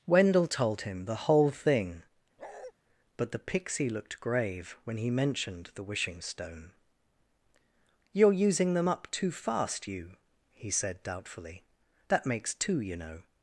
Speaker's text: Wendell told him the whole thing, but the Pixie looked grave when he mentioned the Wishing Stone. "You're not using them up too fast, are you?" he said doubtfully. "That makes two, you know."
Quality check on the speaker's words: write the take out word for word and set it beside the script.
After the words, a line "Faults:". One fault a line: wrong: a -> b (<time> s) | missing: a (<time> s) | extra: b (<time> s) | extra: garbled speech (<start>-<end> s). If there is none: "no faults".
Wendell told him the whole thing, but the Pixie looked grave when he mentioned the Wishing Stone. "You're using them up too fast, you?" he said doubtfully. "That makes two, you know."
Faults:
missing: not (8.3 s)
missing: are (9.9 s)